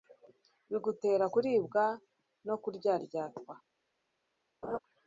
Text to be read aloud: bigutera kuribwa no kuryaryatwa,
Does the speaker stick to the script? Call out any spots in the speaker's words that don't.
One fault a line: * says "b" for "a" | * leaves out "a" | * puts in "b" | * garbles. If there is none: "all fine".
all fine